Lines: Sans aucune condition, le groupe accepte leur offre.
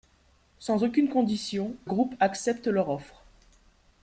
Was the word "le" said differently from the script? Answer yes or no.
yes